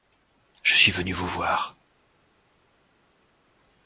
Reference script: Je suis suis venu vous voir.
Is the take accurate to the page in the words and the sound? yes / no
no